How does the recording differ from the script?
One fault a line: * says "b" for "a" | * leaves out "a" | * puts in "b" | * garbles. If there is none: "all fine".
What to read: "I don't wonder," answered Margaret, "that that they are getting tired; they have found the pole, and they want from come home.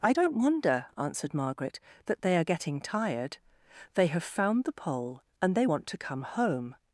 * leaves out "that"
* says "to" for "from"